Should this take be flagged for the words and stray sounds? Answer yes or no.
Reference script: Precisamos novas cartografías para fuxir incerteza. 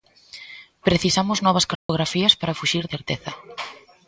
yes